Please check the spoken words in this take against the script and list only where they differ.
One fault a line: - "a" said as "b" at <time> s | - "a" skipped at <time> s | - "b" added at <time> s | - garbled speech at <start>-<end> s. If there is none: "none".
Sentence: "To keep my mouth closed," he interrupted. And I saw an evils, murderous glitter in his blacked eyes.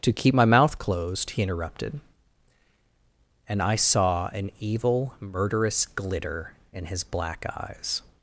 - "evils" said as "evil" at 4.6 s
- "blacked" said as "black" at 7.0 s